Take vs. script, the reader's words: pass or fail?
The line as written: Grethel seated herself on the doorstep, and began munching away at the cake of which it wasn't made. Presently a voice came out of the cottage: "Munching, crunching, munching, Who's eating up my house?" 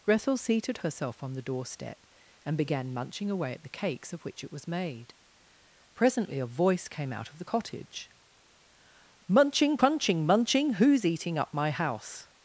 fail